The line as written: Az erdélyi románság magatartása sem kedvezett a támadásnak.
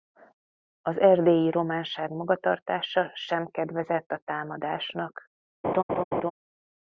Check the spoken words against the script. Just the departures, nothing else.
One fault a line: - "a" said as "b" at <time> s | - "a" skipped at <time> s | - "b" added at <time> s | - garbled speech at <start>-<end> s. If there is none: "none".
none